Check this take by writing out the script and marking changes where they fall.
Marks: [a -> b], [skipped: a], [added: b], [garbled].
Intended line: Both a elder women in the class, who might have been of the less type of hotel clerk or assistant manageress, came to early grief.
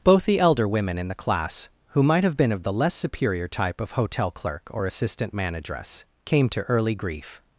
Both [a -> the] elder women in the class, who might have been of the less [added: superior] type of hotel clerk or assistant manageress, came to early grief.